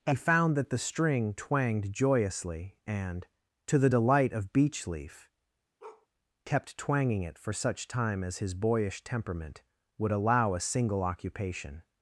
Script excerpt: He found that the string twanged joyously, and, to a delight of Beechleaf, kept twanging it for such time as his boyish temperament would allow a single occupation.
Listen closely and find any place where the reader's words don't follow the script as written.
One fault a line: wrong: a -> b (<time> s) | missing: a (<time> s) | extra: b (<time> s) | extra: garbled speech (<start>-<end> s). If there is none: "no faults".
wrong: a -> the (3.8 s)